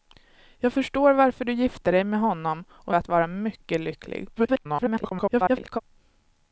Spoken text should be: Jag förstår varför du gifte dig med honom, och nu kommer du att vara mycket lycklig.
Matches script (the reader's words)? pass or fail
fail